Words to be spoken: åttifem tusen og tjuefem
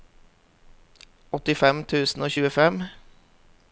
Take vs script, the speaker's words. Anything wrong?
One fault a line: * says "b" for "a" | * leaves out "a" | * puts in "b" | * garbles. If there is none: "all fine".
all fine